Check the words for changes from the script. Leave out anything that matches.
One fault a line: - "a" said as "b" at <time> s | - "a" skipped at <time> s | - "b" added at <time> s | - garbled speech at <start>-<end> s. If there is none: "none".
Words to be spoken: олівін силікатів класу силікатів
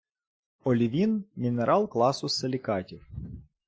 - "силікатів" said as "мінерал" at 1.3 s